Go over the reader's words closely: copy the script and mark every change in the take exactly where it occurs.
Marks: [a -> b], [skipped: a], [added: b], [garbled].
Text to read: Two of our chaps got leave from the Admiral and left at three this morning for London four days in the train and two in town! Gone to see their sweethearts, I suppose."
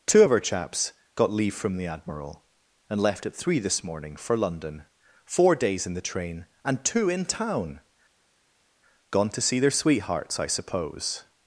Two of our chaps got leave from the Admiral and left at three this morning for London four days in the train and two in town! Gone to see their sweethearts, I suppose."